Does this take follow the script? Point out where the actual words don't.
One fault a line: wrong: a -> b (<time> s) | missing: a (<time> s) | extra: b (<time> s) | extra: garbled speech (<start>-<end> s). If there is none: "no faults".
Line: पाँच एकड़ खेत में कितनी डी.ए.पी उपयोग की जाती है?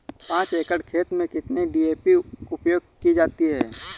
no faults